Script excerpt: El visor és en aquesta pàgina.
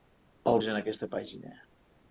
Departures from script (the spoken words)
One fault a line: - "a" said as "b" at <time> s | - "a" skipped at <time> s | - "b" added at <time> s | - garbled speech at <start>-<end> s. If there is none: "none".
- "visor" skipped at 0.6 s